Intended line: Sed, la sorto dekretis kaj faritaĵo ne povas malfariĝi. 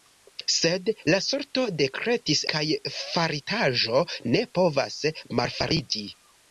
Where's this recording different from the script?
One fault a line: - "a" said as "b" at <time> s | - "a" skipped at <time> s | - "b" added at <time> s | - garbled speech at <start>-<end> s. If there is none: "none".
none